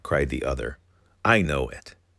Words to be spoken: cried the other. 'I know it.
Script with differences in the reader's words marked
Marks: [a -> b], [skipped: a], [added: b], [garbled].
cried the other. 'I know it.